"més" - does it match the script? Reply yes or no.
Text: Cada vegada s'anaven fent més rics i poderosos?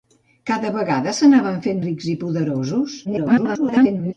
no